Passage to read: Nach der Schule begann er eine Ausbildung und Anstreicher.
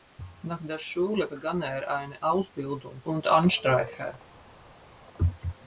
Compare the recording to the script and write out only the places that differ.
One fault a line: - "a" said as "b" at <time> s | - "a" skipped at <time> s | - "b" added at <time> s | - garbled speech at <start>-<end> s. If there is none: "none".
none